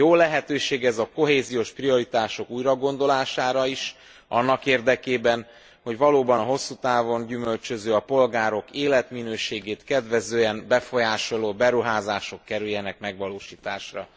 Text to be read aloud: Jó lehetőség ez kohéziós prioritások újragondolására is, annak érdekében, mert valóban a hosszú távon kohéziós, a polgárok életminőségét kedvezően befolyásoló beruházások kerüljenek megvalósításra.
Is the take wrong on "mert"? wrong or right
wrong